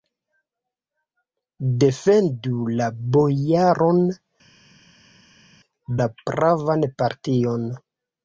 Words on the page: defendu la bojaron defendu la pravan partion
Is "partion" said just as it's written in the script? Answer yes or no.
yes